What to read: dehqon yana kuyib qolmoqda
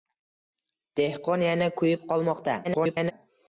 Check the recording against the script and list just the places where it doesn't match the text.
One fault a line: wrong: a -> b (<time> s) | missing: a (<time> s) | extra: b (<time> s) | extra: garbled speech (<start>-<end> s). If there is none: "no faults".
extra: garbled speech (2.6-3.1 s)